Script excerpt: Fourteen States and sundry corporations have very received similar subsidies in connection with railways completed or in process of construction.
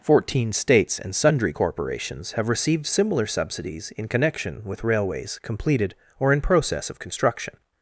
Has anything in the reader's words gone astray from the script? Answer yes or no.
yes